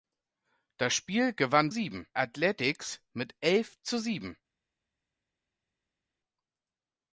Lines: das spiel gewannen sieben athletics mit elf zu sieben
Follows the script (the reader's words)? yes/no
yes